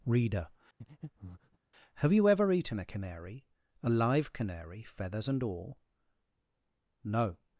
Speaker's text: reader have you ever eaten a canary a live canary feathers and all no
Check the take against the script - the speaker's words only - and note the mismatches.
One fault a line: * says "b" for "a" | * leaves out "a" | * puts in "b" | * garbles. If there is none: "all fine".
all fine